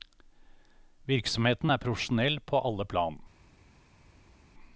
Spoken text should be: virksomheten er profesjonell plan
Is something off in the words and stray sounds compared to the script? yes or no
yes